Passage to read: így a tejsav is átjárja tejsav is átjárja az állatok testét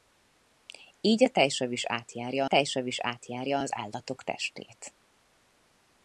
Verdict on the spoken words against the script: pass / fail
pass